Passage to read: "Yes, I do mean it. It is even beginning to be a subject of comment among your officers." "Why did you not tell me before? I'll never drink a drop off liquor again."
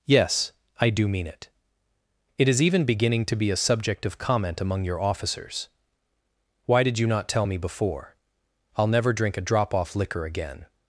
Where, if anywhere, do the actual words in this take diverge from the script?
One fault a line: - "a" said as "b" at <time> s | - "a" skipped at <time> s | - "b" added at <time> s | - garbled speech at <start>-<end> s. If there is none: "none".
none